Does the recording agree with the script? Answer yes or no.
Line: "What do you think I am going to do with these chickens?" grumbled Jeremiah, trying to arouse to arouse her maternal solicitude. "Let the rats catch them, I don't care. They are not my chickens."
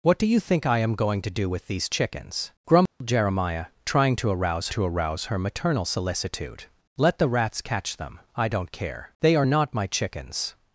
yes